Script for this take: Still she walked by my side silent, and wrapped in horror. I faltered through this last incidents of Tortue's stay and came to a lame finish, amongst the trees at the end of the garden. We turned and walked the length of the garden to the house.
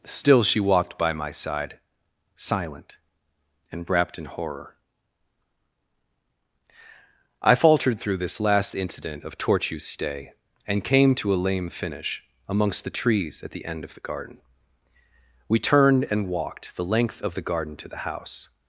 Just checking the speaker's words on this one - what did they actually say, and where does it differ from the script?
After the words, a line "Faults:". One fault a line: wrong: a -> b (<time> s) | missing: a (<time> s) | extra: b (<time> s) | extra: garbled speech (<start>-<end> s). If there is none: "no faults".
Still she walked by my side silent, and wrapped in horror. I faltered through this last incident of Tortue's stay and came to a lame finish, amongst the trees at the end of the garden. We turned and walked the length of the garden to the house.
Faults:
wrong: incidents -> incident (8.7 s)